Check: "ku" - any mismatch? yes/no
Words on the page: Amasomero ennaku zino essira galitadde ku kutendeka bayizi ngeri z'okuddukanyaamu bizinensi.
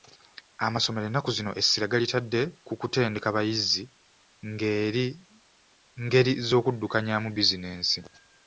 no